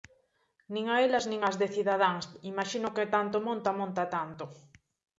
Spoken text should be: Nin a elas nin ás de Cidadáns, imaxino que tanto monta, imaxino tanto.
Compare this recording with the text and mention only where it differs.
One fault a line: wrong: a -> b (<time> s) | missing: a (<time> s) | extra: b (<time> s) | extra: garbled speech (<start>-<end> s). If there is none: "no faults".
wrong: imaxino -> monta (3.8 s)